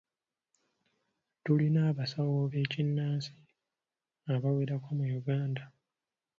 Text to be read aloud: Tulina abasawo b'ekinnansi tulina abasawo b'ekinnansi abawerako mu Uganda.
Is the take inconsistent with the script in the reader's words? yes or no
yes